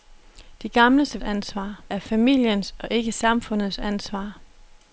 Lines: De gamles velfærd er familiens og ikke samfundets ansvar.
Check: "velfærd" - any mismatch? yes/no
yes